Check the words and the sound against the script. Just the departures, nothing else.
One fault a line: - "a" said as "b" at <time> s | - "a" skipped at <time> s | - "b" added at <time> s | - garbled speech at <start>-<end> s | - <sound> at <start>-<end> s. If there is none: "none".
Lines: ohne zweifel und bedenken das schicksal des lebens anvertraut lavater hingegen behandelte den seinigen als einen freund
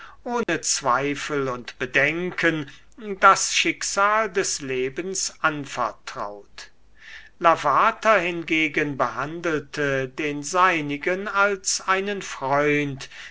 - dropout at 0.4-0.5 s